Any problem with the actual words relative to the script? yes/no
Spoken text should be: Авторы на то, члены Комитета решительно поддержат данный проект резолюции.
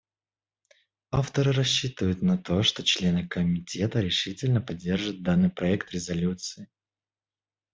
yes